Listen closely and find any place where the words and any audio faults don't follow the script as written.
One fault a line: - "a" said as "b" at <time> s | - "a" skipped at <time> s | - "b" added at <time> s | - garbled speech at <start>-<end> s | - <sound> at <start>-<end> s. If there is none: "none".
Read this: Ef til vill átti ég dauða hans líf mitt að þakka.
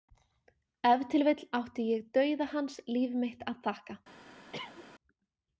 - cough at 4.5-4.9 s